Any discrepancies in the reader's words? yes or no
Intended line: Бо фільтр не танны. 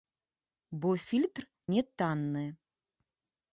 no